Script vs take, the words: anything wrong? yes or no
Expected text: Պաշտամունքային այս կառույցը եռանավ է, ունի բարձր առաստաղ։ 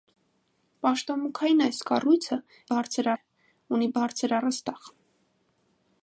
yes